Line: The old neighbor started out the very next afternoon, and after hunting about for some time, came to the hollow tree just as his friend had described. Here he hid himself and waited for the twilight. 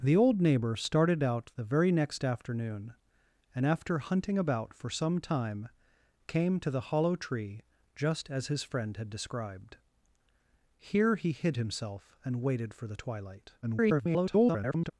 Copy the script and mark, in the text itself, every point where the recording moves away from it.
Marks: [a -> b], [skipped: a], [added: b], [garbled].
The old neighbor started out the very next afternoon, and after hunting about for some time, came to the hollow tree just as his friend had described. Here he hid himself and waited for the twilight. [garbled]